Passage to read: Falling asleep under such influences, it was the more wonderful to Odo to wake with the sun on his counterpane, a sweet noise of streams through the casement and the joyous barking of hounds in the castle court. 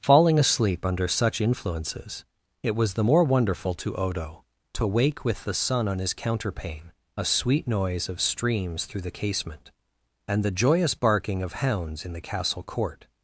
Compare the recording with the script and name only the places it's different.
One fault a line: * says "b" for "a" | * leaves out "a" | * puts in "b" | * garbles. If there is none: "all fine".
all fine